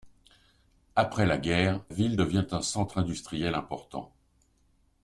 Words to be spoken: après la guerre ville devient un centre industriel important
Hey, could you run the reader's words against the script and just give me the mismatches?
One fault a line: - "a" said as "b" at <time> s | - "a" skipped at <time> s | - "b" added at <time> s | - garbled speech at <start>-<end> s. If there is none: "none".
none